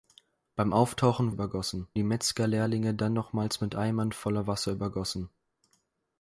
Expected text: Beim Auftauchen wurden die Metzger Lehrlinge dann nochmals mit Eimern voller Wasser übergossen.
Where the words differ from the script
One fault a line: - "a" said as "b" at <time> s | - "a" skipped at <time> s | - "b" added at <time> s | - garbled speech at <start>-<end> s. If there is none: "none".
- "wurden" said as "übergossen" at 1.3 s